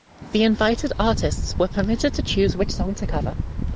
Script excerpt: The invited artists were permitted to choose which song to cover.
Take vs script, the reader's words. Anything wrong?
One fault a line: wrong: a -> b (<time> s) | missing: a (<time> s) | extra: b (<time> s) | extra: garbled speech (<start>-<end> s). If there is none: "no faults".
no faults